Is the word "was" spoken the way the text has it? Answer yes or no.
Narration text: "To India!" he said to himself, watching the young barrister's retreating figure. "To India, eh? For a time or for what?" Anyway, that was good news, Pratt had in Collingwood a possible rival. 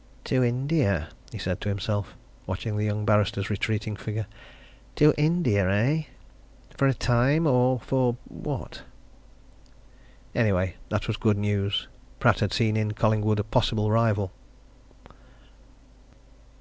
yes